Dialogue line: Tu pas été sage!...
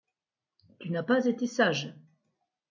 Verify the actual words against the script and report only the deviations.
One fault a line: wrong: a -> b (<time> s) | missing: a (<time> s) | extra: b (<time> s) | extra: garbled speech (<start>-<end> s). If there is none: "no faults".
extra: n'as (0.9 s)